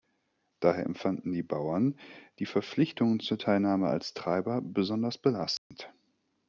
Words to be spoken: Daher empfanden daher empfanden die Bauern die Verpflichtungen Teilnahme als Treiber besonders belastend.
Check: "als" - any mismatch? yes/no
no